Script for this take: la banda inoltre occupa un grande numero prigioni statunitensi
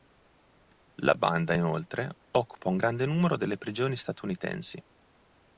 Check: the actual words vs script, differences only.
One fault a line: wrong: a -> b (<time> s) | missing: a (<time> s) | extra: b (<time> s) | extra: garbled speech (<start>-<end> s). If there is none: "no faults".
extra: delle (3.3 s)